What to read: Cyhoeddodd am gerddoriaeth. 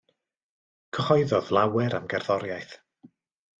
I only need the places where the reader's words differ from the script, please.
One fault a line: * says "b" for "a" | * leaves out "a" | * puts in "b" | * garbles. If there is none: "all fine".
* puts in "lawer"